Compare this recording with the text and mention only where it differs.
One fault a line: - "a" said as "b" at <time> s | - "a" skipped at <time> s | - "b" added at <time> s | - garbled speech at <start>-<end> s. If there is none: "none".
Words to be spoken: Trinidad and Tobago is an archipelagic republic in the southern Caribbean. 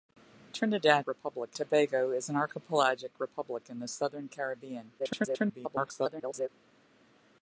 - "and" said as "republic" at 1.1 s
- garbled speech at 5.0-6.5 s